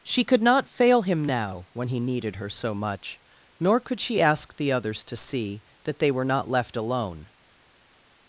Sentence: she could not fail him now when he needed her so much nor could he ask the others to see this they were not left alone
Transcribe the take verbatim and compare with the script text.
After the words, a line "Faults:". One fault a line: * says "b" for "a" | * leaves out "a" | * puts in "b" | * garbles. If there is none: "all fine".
she could not fail him now when he needed her so much nor could she ask the others to see that they were not left alone
Faults:
* says "she" for "he"
* says "that" for "this"